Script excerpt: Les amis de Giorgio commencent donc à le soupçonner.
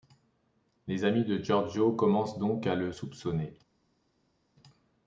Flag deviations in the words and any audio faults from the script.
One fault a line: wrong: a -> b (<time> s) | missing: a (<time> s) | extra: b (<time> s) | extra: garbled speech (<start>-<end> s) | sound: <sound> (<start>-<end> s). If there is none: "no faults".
no faults